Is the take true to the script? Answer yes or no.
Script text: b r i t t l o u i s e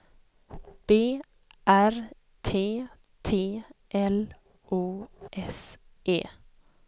no